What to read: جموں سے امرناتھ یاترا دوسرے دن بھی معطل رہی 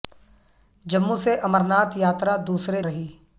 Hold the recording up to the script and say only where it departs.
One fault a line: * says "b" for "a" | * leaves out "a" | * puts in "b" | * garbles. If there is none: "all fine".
* leaves out "دن بھی معطل"